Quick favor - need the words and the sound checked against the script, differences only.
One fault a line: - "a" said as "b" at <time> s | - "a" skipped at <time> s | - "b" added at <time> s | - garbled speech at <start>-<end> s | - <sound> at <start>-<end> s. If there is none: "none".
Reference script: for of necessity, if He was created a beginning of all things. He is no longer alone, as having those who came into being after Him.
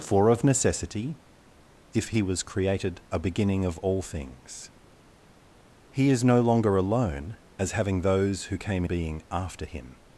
- "into" skipped at 8.8 s